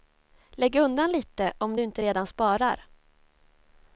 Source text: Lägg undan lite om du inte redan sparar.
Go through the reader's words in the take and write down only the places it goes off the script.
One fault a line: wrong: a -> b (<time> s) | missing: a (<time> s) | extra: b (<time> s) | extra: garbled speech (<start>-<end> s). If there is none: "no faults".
no faults